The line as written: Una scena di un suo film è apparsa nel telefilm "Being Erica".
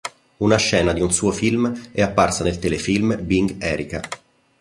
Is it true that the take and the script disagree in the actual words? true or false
false